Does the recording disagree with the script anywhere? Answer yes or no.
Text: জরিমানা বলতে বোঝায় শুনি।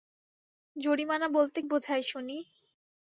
no